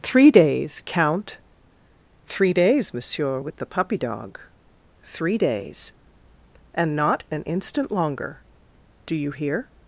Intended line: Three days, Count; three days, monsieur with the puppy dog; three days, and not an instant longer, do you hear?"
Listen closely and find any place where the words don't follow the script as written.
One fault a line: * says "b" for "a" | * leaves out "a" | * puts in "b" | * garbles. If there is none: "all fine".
all fine